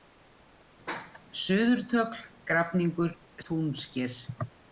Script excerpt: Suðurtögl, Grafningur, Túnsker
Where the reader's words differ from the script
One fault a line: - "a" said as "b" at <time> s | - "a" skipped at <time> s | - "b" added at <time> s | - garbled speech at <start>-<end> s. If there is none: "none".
none